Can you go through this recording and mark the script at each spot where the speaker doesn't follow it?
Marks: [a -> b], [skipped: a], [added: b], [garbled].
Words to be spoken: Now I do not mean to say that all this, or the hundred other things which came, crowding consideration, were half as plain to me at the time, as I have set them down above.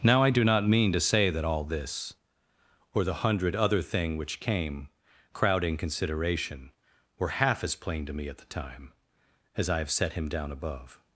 Now I do not mean to say that all this, or the hundred other [things -> thing] which came, crowding consideration, were half as plain to me at the time, as I have set [them -> him] down above.